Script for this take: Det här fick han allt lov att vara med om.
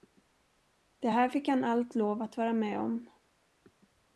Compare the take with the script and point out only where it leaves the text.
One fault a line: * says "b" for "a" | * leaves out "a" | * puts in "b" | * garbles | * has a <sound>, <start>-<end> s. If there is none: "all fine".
all fine